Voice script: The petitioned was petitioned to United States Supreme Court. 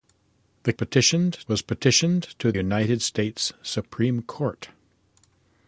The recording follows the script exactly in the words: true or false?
true